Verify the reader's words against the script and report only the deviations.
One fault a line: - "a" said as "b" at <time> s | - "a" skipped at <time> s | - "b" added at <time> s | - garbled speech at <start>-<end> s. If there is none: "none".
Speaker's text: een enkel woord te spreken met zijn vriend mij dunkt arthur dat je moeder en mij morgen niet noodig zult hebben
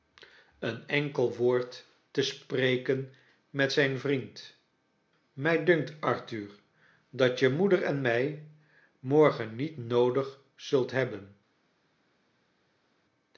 none